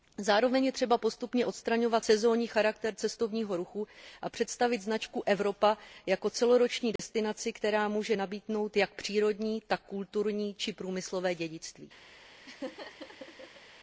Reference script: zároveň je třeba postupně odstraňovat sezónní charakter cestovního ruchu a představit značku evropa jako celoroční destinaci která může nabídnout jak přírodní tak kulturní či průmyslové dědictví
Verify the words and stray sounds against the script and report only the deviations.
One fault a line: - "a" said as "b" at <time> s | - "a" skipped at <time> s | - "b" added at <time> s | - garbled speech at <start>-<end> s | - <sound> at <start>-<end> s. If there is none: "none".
- dropout at 7.0-7.0 s
- laugh at 12.5-13.6 s